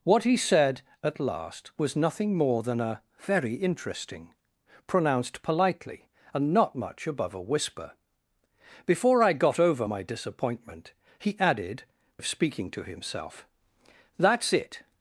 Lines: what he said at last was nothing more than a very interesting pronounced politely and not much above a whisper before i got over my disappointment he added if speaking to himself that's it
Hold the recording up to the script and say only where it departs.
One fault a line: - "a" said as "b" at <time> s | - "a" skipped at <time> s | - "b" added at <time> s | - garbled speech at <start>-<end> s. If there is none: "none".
none